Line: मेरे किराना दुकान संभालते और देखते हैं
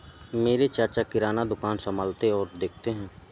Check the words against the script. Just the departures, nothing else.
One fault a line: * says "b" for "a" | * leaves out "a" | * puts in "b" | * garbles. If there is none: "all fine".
* puts in "चाचा"